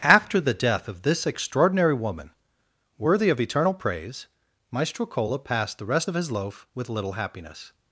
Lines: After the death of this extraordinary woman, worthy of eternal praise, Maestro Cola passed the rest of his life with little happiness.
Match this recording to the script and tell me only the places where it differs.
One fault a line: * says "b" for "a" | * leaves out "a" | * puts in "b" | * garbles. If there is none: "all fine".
* says "loaf" for "life"